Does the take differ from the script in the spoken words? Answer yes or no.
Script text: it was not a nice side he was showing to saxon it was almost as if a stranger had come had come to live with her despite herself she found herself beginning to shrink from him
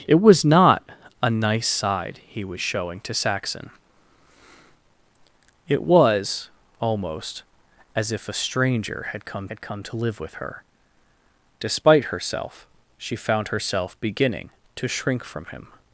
no